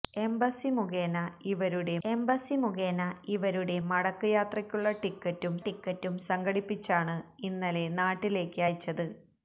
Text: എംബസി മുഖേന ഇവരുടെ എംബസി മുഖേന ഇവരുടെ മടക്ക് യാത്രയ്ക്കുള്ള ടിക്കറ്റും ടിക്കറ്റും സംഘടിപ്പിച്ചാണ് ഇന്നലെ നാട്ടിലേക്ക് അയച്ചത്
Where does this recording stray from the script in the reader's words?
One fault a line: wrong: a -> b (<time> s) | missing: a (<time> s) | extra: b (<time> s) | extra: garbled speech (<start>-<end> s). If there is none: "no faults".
no faults